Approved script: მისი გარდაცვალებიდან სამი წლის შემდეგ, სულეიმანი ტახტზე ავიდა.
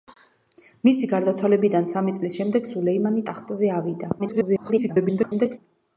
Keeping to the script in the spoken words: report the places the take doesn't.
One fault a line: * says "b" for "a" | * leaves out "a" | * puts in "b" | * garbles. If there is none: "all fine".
* garbles